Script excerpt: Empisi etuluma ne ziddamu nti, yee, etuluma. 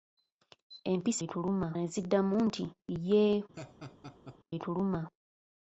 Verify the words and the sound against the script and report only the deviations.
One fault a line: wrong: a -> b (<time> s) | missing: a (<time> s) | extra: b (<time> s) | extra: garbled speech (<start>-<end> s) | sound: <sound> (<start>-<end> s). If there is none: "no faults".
sound: laugh (3.5-4.4 s)